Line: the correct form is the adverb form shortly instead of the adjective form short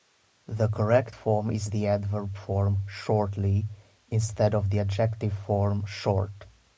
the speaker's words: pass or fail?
pass